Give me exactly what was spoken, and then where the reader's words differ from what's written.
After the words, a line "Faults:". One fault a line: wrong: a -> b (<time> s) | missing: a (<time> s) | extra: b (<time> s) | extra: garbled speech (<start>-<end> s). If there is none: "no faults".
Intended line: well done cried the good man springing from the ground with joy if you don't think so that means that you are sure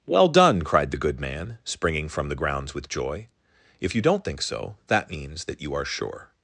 well done cried the good man springing from the grounds with joy if you don't think so that means that you are sure
Faults:
wrong: ground -> grounds (2.4 s)